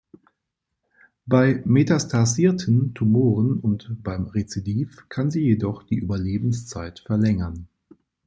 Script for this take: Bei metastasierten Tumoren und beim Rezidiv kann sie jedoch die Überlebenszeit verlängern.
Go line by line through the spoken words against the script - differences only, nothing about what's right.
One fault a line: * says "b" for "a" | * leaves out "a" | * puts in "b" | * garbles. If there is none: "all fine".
all fine